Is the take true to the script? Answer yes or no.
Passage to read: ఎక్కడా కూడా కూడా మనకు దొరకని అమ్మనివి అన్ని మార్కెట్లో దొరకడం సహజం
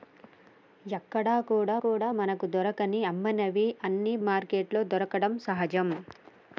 yes